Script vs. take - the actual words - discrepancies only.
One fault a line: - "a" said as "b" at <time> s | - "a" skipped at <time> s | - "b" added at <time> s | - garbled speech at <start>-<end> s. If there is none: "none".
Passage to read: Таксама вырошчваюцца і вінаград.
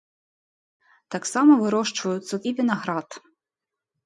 none